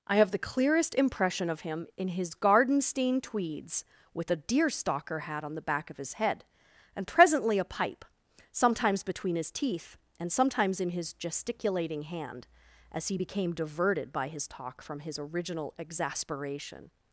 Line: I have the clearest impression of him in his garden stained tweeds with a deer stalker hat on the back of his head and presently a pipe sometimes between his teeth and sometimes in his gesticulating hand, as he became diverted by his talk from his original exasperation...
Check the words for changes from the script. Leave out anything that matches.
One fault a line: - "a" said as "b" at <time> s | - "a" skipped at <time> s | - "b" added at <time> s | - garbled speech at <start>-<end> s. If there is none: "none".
none